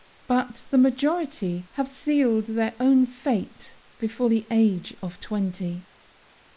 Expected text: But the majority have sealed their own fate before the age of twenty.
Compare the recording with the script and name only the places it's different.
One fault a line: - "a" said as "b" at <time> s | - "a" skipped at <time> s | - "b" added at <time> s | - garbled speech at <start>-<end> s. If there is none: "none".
none